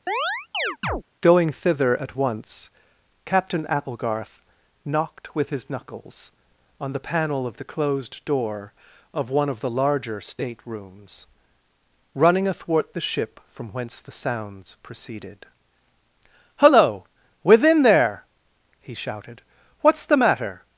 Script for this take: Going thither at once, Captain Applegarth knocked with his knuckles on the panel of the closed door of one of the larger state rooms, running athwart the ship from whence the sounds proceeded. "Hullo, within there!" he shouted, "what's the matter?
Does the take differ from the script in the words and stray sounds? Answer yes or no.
yes